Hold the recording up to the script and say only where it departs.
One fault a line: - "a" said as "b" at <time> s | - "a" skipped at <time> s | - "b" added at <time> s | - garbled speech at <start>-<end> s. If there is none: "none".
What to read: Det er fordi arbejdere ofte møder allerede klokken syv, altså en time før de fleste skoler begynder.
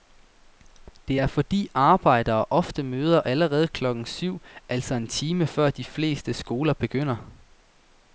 none